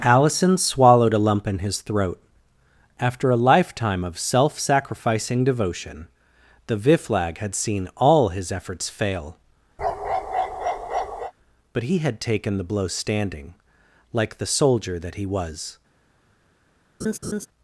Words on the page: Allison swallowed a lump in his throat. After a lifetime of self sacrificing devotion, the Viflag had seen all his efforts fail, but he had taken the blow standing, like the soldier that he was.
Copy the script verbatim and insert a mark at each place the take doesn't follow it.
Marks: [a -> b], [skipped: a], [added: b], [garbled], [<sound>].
Allison swallowed a lump in his throat. After a lifetime of self sacrificing devotion, the Viflag had seen all his efforts fail, [bark] but he had taken the blow standing, like the soldier that he was. [laugh]